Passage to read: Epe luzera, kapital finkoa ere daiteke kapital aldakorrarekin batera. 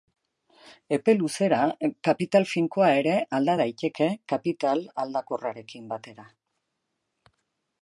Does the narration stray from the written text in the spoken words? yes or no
yes